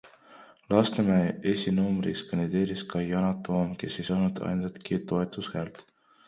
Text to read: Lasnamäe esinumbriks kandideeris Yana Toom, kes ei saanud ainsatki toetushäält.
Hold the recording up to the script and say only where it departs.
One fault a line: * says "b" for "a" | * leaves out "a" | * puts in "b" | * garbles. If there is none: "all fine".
* puts in "ka"